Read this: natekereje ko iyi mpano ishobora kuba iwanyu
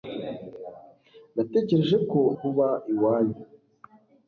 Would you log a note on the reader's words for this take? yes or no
yes